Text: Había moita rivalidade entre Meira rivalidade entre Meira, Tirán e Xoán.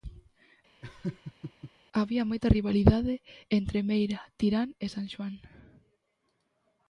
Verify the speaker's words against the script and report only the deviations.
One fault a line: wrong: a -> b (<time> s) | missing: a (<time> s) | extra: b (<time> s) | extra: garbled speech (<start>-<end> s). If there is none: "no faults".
missing: rivalidade entre Meira (4.2 s)
extra: San (4.9 s)